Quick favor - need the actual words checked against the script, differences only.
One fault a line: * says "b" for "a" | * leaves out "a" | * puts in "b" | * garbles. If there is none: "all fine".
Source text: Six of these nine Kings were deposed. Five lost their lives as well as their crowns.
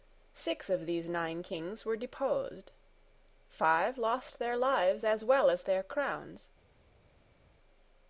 all fine